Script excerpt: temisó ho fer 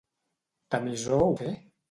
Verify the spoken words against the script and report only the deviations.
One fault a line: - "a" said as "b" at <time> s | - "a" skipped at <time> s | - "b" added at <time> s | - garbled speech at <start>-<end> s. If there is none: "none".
none